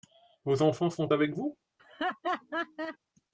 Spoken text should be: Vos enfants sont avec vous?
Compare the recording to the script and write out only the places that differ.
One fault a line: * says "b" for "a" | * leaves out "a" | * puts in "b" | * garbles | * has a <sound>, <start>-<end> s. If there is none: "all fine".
* has a laugh, 1.8-3.0 s